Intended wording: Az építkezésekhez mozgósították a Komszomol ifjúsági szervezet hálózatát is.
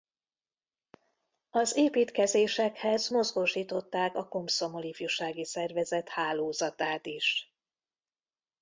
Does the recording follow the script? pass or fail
pass